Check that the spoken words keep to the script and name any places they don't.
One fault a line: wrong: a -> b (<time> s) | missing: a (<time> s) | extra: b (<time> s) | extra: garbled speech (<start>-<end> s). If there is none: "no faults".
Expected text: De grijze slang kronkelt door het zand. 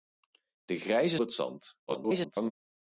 missing: slang kronkelt door (1.2 s)
extra: garbled speech (1.9-2.5 s)